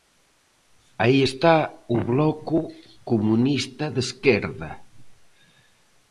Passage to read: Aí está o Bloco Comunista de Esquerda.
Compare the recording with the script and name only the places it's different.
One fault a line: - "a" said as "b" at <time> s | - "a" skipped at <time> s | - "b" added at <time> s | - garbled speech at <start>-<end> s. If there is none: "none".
none